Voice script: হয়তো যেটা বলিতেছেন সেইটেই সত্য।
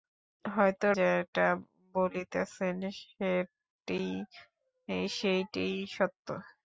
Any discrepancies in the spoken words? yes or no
no